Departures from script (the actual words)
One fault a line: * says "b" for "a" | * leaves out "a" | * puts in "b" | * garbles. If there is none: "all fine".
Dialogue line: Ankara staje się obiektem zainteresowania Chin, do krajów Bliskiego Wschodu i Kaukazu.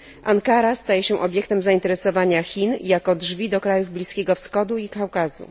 * puts in "jako drzwi"